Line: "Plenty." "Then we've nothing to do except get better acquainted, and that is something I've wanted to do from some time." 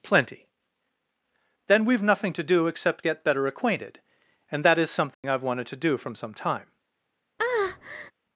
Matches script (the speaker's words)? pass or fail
pass